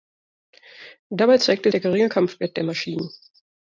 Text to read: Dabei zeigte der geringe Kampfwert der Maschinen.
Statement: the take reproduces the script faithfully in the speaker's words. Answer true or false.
true